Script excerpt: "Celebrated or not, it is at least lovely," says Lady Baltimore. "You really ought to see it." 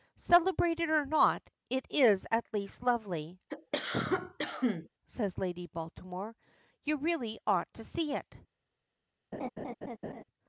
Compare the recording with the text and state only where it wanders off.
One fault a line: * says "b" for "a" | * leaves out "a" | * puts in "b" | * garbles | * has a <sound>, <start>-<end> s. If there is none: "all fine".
* has a cough, 3.5-4.9 s
* has a laugh, 9.3-10.2 s